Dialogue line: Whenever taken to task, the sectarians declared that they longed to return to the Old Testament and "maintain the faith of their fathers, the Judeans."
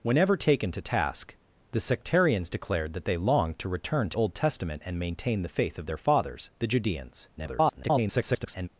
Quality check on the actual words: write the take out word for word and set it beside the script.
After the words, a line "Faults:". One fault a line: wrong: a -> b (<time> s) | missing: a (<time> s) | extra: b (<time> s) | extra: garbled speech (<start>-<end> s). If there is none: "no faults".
Whenever taken to task, the sectarians declared that they longed to return to Old Testament and "maintain the faith of their fathers, the Judeans." [garbled]
Faults:
missing: the (4.2 s)
extra: garbled speech (7.4-8.7 s)